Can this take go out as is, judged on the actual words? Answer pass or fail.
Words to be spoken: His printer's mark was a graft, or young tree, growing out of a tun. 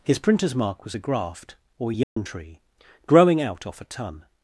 fail